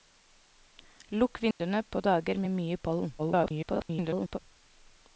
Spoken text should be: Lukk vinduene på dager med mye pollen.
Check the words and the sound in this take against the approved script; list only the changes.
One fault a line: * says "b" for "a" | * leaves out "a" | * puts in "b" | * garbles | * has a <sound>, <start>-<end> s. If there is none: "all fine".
* has a dropout, 1.5-1.6 s
* garbles